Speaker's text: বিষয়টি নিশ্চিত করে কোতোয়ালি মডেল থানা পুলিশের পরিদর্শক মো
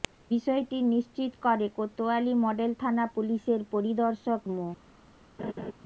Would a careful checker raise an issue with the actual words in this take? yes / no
no